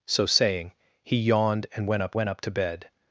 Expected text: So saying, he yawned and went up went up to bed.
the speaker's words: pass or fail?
pass